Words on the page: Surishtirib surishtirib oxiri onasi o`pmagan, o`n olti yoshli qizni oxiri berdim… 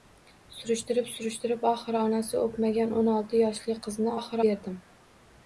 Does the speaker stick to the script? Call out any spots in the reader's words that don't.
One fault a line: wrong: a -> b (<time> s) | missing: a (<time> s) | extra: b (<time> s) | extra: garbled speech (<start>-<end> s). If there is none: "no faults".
no faults